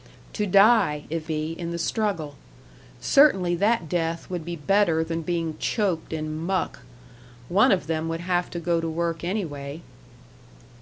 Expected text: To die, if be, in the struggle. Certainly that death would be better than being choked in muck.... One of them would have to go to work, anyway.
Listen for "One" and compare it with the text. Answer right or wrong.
right